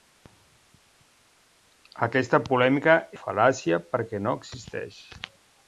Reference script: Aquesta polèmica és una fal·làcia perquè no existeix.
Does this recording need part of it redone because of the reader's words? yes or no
yes